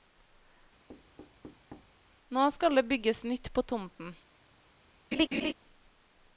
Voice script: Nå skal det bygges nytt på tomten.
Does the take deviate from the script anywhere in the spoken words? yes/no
no